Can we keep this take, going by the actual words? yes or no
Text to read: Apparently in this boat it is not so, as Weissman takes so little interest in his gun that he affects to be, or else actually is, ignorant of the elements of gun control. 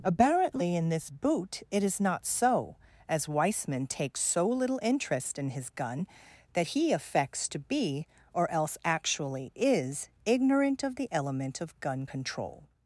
no